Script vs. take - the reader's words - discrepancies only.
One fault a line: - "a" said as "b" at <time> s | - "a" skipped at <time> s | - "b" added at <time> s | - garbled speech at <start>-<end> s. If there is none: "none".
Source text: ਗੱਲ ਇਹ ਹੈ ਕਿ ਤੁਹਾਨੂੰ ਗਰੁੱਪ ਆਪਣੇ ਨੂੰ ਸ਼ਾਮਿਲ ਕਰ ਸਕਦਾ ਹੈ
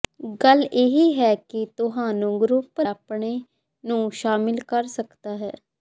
none